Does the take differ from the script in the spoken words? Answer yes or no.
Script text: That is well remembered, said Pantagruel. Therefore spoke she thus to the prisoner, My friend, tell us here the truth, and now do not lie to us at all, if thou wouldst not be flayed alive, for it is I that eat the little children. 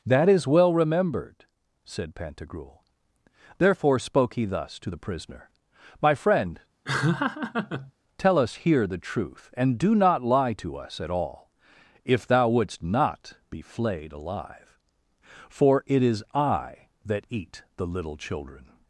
yes